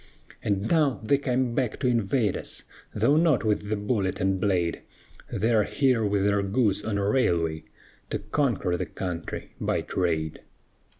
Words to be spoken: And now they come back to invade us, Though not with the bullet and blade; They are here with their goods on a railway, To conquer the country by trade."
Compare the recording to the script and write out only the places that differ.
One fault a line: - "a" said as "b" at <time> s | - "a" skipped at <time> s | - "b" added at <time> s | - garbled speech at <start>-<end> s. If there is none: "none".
none